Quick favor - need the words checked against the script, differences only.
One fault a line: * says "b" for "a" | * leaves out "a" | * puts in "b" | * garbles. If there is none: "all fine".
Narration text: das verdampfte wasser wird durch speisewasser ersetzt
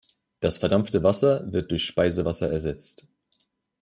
all fine